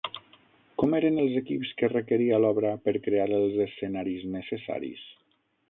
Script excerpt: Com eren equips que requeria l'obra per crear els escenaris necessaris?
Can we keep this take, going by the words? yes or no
no